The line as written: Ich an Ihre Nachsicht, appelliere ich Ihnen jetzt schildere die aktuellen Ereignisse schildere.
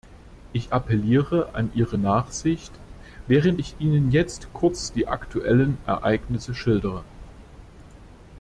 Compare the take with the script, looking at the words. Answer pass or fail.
fail